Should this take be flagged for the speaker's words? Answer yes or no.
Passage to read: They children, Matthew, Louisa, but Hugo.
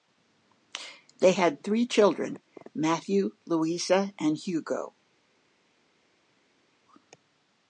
yes